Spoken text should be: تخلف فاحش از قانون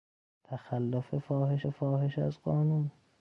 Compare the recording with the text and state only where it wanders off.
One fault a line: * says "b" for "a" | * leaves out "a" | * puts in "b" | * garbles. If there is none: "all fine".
* puts in "فاحش"